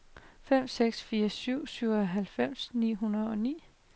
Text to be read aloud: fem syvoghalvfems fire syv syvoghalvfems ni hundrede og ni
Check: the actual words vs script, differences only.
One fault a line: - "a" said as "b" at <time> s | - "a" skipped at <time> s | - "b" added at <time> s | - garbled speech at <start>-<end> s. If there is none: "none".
- "syvoghalvfems" said as "seks" at 0.7 s